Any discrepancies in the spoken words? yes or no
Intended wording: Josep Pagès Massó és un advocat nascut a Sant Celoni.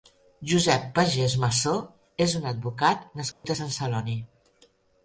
no